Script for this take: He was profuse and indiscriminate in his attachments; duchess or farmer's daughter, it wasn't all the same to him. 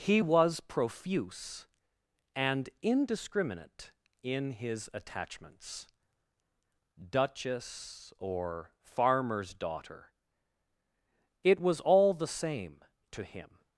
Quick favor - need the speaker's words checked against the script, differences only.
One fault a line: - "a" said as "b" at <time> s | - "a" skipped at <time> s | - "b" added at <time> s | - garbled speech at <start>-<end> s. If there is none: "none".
- "wasn't" said as "was" at 11.6 s